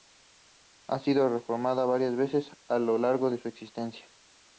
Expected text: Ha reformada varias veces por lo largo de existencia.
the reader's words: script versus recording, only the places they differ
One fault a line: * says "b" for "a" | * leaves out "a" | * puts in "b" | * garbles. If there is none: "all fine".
* puts in "sido"
* says "a" for "por"
* puts in "su"